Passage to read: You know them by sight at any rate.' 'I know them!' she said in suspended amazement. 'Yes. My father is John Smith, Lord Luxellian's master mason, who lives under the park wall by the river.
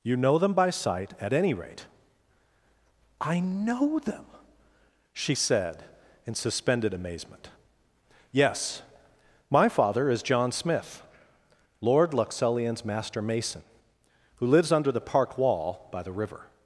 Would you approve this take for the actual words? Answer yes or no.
yes